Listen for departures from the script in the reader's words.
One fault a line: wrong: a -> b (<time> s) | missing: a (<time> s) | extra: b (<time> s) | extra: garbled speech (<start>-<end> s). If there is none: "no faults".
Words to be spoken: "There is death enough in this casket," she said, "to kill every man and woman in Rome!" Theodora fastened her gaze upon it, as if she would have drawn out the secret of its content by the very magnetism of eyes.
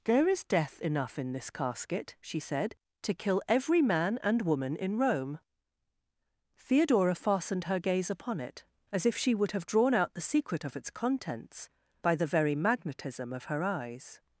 wrong: content -> contents (10.9 s)
extra: her (13.4 s)